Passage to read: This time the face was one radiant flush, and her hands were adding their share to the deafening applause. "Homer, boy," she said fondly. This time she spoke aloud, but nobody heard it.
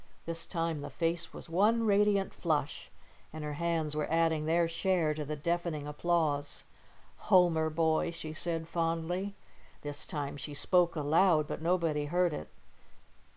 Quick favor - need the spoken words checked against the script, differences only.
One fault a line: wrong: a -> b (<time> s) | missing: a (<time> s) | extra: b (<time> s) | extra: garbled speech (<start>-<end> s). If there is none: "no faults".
no faults